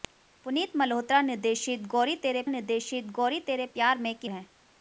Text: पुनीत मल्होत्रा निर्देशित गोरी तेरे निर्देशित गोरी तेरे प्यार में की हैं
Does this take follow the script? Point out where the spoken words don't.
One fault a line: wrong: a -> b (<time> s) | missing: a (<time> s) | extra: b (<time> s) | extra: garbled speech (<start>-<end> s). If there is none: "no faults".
no faults